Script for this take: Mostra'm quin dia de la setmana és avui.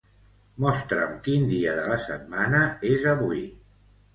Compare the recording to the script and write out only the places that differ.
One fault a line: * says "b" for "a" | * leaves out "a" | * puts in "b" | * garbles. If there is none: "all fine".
all fine